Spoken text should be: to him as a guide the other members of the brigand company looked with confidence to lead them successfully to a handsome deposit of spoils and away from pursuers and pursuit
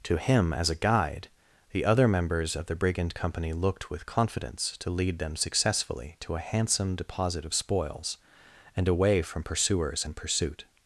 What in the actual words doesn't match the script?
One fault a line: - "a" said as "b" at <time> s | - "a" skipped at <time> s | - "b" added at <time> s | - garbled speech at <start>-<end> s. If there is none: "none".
none